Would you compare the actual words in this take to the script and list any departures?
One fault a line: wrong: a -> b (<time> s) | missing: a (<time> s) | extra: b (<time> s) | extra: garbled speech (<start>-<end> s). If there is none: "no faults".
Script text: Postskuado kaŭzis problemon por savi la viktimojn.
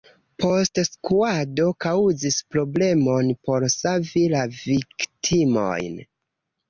no faults